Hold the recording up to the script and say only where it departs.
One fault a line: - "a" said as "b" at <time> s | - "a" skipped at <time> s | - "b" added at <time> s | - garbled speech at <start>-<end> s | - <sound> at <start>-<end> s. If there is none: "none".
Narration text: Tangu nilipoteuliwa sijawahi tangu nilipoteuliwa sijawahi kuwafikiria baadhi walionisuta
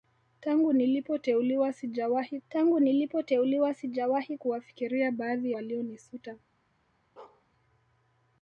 - bark at 7.2-7.4 s